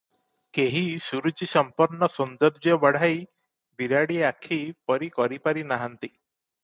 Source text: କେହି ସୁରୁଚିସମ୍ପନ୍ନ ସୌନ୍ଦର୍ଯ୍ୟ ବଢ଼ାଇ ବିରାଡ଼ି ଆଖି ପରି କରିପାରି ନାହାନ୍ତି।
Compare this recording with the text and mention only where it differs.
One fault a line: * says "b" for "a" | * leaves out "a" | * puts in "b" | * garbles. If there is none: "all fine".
all fine